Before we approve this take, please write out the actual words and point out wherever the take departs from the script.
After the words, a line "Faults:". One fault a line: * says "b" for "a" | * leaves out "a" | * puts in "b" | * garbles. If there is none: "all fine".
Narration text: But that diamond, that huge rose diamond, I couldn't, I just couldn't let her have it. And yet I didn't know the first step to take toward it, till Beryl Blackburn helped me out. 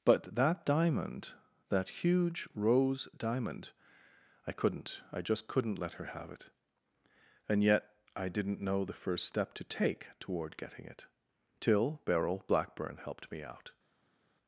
But that diamond, that huge rose diamond, I couldn't, I just couldn't let her have it. And yet I didn't know the first step to take toward getting it, till Beryl Blackburn helped me out.
Faults:
* puts in "getting"